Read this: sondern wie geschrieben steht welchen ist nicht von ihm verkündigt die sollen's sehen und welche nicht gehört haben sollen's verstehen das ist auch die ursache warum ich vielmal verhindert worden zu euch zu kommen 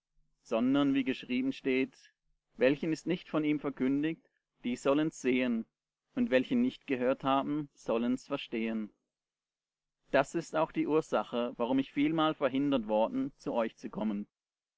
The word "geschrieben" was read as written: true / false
true